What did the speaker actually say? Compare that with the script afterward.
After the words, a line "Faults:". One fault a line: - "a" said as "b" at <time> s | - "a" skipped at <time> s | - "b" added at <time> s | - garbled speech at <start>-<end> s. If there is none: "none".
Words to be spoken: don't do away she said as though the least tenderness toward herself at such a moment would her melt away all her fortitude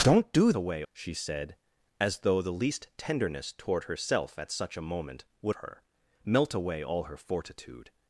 don't do away she said as though the least tenderness toward herself at such a moment would her melt away all her fortitude
Faults:
none